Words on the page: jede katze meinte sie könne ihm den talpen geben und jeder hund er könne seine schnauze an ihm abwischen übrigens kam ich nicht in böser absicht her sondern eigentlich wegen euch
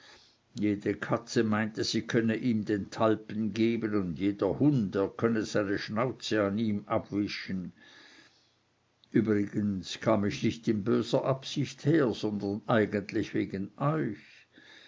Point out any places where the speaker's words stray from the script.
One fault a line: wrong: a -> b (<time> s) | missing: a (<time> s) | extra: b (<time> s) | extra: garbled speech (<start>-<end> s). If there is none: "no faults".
no faults